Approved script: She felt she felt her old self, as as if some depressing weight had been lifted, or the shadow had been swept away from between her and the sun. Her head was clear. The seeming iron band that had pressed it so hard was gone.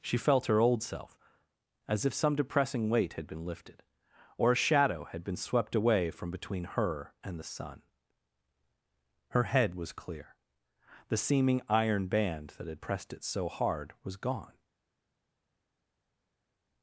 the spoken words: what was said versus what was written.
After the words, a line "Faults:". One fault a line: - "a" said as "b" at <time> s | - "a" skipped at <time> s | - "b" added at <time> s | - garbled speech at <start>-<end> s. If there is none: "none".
She felt her old self, as if some depressing weight had been lifted, or a shadow had been swept away from between her and the sun. Her head was clear. The seeming iron band that had pressed it so hard was gone.
Faults:
- "she felt" skipped at 0.5 s
- "as" skipped at 2.0 s
- "the" said as "a" at 4.5 s